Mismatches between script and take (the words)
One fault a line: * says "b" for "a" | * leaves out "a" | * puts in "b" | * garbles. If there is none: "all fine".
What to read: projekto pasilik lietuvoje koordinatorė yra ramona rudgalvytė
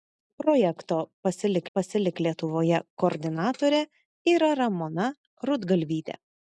* puts in "pasilik"